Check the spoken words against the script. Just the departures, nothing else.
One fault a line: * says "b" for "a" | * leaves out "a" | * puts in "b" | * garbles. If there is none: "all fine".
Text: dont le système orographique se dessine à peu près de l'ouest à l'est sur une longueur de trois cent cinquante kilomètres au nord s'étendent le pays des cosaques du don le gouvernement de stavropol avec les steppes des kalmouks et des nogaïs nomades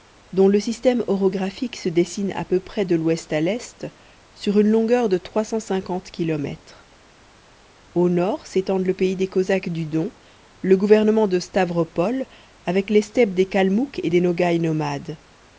all fine